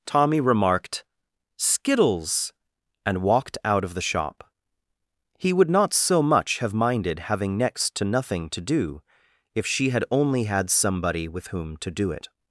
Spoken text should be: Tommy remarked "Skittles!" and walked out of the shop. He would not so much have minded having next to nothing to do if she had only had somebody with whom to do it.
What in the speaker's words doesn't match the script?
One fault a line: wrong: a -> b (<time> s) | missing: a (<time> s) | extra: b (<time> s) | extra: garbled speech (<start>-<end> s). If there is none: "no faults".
no faults